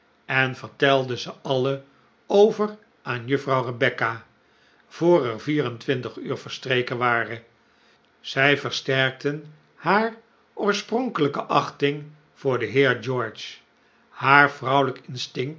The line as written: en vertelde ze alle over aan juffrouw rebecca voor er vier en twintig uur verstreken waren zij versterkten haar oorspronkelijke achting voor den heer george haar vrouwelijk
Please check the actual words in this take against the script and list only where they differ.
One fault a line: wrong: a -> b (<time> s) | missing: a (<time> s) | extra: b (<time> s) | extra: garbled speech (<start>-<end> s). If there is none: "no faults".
no faults